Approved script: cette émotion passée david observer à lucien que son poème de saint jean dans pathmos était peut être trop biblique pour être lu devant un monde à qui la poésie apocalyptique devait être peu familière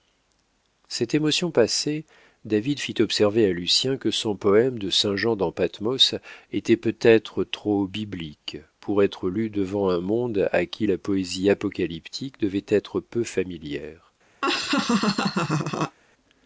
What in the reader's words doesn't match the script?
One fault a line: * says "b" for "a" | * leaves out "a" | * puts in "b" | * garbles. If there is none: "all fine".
* puts in "fit"